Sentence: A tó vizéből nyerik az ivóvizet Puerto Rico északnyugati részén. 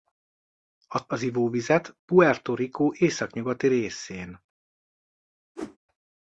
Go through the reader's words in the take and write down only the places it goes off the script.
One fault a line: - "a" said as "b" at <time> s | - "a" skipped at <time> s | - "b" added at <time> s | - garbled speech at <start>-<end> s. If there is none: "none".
- "tó vizéből nyerik" skipped at 1.1 s